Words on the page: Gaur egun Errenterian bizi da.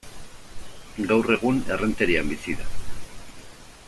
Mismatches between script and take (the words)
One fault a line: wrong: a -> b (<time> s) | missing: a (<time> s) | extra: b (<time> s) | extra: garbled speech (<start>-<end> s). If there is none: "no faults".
no faults